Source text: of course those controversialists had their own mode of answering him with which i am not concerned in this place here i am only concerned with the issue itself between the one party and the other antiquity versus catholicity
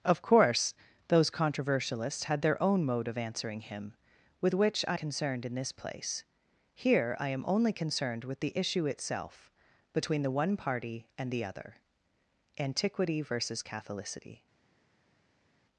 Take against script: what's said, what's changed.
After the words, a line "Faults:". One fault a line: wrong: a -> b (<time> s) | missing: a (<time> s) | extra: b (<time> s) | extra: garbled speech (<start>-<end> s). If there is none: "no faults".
of course those controversialists had their own mode of answering him with which i concerned in this place here i am only concerned with the issue itself between the one party and the other antiquity versus catholicity
Faults:
missing: am not (5.0 s)